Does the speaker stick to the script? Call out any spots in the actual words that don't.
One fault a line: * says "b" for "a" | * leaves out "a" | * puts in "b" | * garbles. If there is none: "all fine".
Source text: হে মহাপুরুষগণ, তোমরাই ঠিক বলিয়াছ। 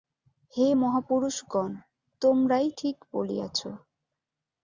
all fine